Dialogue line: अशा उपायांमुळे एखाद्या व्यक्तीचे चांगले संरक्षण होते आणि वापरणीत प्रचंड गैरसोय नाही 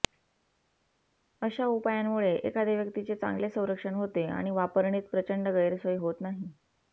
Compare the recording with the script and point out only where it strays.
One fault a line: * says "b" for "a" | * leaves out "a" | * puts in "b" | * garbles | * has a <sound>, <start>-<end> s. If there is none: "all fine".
* puts in "होत"